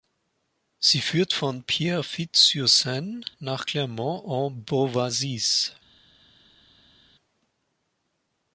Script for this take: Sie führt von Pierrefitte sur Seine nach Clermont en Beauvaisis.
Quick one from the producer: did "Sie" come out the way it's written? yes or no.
yes